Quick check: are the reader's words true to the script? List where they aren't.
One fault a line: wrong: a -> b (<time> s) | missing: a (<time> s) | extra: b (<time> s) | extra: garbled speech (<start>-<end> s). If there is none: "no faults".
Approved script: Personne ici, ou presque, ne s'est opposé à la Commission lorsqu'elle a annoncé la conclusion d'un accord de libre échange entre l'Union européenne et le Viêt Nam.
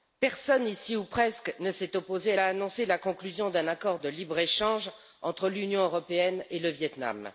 missing: la Commission lorsqu'elle (2.4 s)